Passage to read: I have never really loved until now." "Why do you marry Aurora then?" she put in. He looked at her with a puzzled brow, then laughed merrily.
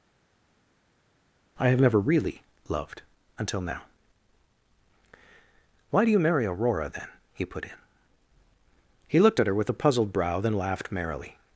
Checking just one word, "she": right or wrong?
wrong